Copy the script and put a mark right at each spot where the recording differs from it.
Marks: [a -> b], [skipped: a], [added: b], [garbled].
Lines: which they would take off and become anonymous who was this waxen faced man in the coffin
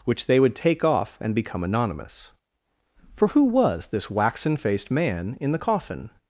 which they would take off and become anonymous [added: for] who was this waxen faced man in the coffin